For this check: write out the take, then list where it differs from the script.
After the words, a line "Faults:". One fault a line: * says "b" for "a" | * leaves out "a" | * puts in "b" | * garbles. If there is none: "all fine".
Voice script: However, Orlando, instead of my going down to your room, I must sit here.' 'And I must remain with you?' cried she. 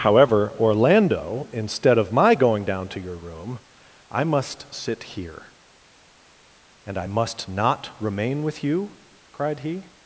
However, Orlando, instead of my going down to your room, I must sit here.' 'And I must not remain with you?' cried he.
Faults:
* puts in "not"
* says "he" for "she"